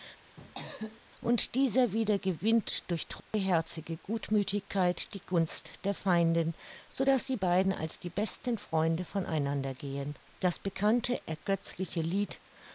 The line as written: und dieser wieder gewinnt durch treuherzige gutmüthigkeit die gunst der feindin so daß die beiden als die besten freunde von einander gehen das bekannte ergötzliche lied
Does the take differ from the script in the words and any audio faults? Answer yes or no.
yes